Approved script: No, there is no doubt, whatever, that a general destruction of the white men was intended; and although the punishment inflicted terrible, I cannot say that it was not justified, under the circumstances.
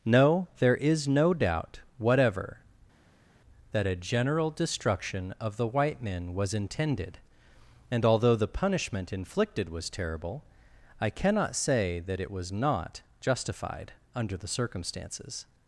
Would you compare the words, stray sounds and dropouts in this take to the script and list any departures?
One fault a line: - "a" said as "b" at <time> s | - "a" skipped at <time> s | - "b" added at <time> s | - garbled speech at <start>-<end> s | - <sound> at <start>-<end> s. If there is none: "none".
- "was" added at 9.7 s